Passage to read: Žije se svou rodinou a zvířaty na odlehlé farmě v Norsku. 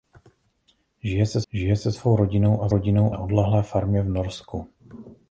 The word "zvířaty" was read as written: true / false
false